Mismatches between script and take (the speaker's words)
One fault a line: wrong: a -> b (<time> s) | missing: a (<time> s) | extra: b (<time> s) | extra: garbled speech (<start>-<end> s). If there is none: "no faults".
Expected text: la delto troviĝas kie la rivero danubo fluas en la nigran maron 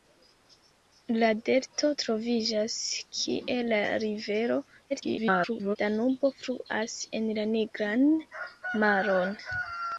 extra: garbled speech (4.9-5.8 s)